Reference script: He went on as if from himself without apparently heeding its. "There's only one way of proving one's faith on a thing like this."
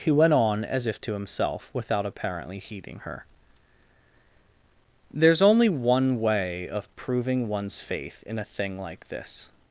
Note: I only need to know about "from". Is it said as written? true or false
false